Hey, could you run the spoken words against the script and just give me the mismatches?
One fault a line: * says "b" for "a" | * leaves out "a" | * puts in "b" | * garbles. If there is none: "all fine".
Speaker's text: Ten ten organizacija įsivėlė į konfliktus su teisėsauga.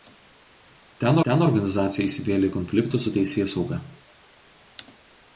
all fine